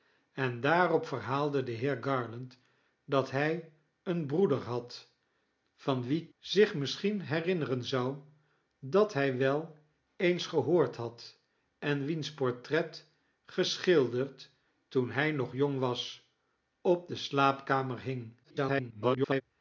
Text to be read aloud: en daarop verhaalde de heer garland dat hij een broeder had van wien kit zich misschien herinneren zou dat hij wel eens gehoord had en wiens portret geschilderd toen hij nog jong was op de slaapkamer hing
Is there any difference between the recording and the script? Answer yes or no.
yes